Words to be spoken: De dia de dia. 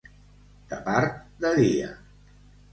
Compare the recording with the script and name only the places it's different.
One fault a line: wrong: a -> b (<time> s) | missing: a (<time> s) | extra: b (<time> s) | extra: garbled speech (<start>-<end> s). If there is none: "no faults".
wrong: dia -> part (0.9 s)